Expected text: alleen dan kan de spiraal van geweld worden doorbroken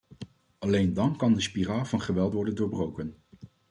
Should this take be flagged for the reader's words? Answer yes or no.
no